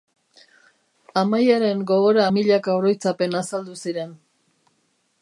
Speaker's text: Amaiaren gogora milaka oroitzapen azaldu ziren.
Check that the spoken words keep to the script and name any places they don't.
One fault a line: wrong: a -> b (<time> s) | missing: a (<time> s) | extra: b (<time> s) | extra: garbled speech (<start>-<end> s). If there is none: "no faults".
no faults